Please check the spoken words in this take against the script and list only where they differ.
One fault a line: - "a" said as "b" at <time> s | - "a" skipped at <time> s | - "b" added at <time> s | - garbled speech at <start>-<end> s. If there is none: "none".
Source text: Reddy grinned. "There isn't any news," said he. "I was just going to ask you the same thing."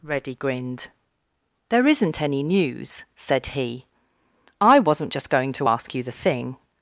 - "was" said as "wasn't" at 4.8 s
- "same" skipped at 6.1 s